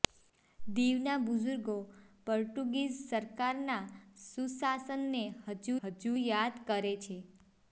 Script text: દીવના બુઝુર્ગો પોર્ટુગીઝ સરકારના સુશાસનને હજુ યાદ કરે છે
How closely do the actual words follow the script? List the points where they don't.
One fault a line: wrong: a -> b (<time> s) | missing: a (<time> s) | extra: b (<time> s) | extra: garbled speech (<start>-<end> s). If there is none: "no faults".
extra: હજુ (5.8 s)